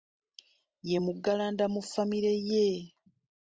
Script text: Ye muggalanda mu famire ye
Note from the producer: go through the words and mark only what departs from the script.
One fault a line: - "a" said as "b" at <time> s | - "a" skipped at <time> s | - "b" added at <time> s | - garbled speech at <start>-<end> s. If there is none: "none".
none